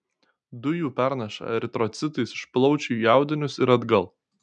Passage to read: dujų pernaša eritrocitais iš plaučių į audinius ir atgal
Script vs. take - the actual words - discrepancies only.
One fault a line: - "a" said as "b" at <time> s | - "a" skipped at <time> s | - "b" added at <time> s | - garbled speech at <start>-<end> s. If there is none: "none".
none